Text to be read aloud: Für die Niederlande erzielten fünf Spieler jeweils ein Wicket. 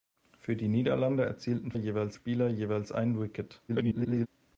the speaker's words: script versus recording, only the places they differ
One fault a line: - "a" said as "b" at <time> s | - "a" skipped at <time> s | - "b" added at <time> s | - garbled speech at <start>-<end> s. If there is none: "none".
- "fünf" said as "jeweils" at 1.8 s
- garbled speech at 3.7-4.3 s